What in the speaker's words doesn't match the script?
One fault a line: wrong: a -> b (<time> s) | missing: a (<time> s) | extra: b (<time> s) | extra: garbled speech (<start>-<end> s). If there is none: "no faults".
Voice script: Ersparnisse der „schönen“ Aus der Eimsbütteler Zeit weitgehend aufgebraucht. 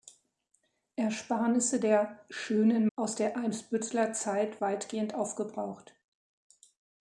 no faults